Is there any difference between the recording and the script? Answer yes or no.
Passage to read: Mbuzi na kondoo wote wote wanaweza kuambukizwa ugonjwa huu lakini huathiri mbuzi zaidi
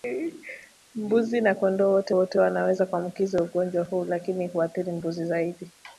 no